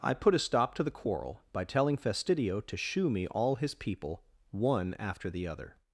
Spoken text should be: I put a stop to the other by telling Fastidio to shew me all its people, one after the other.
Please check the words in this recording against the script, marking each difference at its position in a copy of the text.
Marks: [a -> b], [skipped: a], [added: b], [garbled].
I put a stop to the [other -> quarrel] by telling Fastidio to shew me all [its -> his] people, one after the other.